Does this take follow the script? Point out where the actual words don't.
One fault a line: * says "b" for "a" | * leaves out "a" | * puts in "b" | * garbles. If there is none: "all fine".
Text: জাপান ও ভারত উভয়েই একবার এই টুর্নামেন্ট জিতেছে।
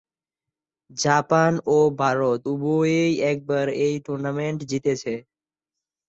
all fine